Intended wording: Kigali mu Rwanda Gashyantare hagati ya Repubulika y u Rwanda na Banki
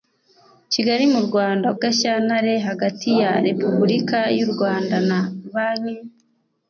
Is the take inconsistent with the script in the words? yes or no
no